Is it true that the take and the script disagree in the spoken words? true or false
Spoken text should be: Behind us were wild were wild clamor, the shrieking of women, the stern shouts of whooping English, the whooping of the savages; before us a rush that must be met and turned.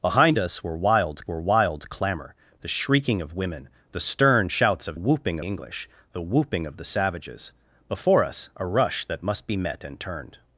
false